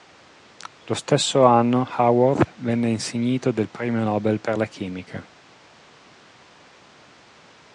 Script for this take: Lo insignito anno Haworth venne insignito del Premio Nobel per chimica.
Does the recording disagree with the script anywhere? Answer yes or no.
yes